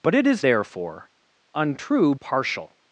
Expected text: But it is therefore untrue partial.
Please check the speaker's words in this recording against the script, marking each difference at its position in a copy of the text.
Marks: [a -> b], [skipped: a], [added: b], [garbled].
But it is therefore untrue partial.